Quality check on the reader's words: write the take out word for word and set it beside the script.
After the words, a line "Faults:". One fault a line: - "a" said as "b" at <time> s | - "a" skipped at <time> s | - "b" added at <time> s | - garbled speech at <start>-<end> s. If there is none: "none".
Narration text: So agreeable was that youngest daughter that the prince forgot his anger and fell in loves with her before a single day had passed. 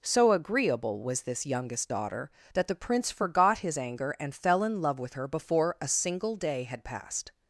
So agreeable was this youngest daughter that the prince forgot his anger and fell in love with her before a single day had passed.
Faults:
- "that" said as "this" at 1.2 s
- "loves" said as "love" at 4.8 s